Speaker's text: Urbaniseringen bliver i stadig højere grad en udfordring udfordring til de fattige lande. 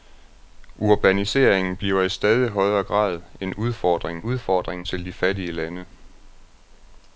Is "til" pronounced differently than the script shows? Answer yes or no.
no